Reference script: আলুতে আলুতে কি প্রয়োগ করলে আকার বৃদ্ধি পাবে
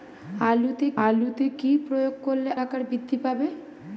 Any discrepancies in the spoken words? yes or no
no